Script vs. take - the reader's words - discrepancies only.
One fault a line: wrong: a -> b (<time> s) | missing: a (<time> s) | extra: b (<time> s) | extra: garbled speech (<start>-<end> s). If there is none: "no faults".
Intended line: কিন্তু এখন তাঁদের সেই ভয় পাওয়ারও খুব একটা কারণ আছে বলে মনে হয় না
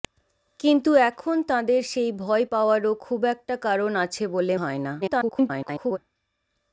missing: মনে (4.6 s)
extra: garbled speech (5.0-6.0 s)